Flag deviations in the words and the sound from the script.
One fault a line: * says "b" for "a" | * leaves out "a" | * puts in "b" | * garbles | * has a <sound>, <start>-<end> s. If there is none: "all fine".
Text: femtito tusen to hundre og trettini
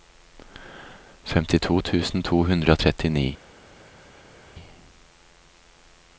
all fine